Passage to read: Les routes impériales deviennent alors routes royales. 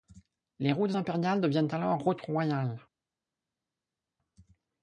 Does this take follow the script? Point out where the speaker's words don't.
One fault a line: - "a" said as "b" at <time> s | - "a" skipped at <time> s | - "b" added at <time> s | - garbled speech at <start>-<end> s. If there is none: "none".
none